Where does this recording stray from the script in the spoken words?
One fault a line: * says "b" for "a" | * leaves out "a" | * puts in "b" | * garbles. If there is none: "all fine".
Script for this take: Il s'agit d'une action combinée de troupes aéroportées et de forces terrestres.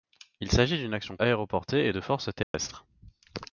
* leaves out "combinée de troupes"